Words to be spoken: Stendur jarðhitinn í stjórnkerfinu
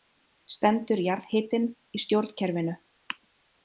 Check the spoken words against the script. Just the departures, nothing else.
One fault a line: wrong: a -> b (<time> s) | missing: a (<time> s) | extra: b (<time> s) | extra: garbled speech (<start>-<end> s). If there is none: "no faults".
no faults